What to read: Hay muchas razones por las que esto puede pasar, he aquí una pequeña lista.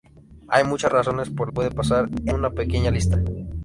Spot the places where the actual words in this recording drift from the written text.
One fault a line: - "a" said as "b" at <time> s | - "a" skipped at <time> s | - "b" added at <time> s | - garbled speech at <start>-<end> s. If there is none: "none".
- "las que esto" skipped at 1.5 s
- "aquí" skipped at 2.3 s